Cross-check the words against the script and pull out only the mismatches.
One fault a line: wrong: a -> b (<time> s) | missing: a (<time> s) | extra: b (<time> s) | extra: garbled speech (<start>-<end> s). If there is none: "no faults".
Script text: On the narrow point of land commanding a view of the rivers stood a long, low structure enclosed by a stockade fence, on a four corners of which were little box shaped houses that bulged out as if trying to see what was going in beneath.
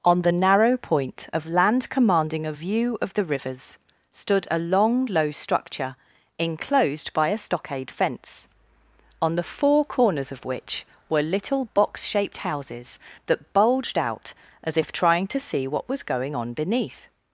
wrong: a -> the (9.4 s)
wrong: in -> on (16.3 s)